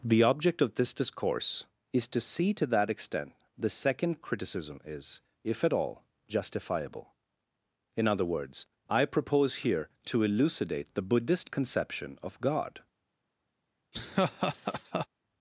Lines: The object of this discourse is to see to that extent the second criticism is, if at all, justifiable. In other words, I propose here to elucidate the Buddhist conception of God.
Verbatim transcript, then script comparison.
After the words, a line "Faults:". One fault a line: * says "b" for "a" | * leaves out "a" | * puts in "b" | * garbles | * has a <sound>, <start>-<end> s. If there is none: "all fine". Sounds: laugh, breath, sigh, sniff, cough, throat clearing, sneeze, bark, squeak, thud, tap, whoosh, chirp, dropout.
The object of this discourse is to see to that extent the second criticism is, if at all, justifiable. In other words, I propose here to elucidate the Buddhist conception of God.
Faults:
* has a laugh, 13.9-15.1 s